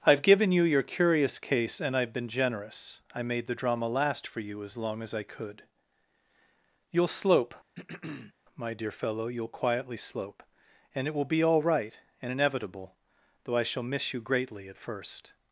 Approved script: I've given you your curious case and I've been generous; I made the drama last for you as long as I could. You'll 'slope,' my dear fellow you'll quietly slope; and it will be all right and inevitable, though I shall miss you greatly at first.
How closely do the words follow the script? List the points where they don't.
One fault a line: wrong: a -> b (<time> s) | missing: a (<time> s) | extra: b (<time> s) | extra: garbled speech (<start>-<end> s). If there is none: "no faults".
no faults